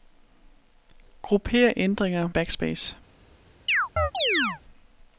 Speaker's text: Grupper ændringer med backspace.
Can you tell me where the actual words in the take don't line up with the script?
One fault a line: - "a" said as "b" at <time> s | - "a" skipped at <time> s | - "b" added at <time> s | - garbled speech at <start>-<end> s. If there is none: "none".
- "med" skipped at 2.3 s